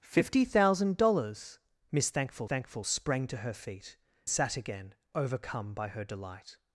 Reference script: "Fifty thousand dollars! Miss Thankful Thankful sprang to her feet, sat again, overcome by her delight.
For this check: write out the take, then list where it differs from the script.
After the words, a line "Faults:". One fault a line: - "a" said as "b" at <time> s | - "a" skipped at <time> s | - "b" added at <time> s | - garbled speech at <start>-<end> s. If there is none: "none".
"Fifty thousand dollars! Miss Thankful Thankful sprang to her feet, sat again, overcome by her delight.
Faults:
none